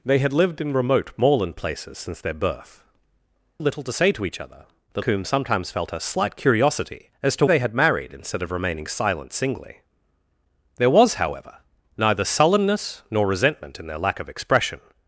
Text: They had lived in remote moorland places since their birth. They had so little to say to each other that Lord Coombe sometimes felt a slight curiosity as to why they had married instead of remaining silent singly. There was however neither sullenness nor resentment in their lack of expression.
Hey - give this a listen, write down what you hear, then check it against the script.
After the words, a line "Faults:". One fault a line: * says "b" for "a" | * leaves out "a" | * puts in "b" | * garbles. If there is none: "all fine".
They had lived in remote moorland places since their birth. Little to say to each other that Coombe sometimes felt a slight curiosity as to they had married instead of remaining silent singly. There was however neither sullenness nor resentment in their lack of expression.
Faults:
* leaves out "They had so"
* leaves out "Lord"
* leaves out "why"